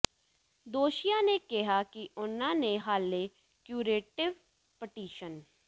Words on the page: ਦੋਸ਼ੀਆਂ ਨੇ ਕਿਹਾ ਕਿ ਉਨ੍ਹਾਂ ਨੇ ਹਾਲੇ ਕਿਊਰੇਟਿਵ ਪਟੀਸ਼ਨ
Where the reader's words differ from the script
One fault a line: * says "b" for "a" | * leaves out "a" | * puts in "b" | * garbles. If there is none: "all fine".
all fine